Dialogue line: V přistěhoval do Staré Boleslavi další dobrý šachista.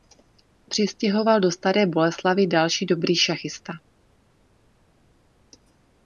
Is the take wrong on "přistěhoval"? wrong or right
right